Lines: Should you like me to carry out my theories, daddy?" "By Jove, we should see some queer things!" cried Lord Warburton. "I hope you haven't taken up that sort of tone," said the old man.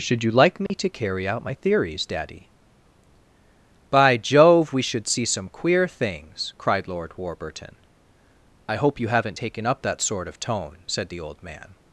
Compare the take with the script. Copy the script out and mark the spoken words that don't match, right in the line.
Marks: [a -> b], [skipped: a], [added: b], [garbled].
Should you like me to carry out my theories, daddy?" "By Jove, we should see some queer things!" cried Lord Warburton. "I hope you haven't taken up that sort of tone," said the old man.